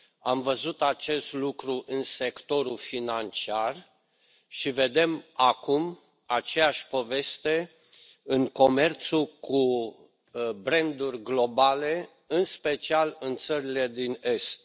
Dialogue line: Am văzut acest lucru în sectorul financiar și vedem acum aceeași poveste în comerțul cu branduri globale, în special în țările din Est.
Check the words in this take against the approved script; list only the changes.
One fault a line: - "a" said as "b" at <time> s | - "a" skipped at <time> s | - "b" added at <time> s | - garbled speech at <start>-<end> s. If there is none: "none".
none